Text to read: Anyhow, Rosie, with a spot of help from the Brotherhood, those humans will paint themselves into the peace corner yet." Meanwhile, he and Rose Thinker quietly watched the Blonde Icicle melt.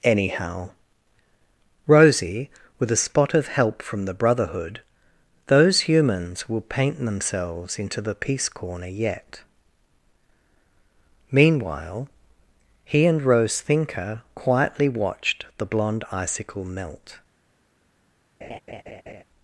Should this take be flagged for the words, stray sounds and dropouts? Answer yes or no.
yes